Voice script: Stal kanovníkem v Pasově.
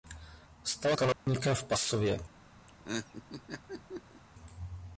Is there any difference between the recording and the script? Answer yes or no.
no